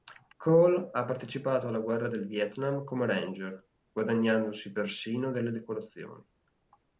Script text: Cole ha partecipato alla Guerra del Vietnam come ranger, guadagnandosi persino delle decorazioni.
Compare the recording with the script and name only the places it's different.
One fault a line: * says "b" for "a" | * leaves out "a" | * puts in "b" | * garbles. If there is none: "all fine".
all fine